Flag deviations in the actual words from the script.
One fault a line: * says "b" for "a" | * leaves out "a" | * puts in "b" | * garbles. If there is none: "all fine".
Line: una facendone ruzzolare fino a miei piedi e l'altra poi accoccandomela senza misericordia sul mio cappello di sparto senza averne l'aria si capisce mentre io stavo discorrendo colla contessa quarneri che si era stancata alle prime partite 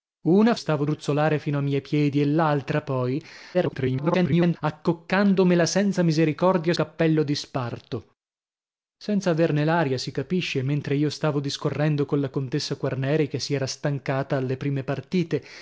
* says "stavo" for "facendone"
* garbles
* leaves out "sul mio"